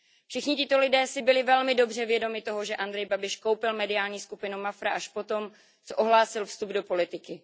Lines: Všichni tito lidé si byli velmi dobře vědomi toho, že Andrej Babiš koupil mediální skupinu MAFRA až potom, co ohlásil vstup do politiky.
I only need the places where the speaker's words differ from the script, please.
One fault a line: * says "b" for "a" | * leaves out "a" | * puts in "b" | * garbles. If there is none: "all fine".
all fine